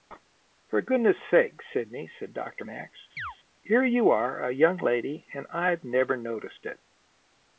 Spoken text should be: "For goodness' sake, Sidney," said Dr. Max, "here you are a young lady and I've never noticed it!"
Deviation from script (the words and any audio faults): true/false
true